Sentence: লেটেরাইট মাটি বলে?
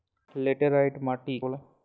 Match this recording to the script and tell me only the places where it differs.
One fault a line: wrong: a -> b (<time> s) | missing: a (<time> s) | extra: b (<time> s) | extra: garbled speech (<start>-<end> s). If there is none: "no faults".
no faults